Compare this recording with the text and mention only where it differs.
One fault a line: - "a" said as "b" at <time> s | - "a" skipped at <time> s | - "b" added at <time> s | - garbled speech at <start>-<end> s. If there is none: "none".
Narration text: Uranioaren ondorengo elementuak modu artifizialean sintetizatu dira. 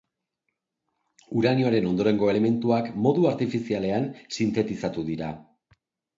none